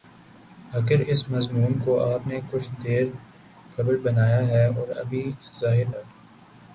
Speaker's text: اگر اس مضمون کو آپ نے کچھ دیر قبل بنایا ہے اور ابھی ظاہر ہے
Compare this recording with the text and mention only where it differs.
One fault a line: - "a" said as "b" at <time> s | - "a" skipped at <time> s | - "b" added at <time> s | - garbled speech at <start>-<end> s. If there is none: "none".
none